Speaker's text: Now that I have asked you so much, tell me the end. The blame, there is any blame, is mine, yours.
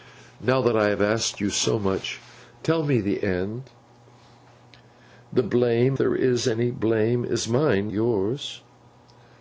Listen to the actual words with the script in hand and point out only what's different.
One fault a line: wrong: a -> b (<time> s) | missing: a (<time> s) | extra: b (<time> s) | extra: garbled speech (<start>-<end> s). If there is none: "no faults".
no faults